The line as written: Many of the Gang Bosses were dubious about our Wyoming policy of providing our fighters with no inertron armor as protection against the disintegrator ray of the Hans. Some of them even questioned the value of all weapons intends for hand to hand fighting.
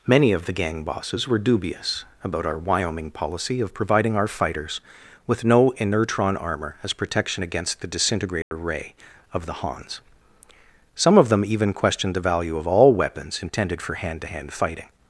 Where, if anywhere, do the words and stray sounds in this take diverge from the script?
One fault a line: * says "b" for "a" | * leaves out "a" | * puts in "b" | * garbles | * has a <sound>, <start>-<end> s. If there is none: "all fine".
* has a dropout, 8.4-8.5 s
* says "intended" for "intends"